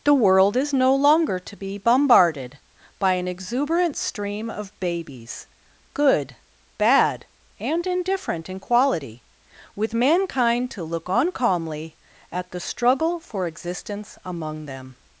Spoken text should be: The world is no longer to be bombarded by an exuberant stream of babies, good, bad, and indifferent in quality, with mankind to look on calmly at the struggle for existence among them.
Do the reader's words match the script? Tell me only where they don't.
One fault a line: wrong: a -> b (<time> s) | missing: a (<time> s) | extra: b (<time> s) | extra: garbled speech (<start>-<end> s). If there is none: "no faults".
no faults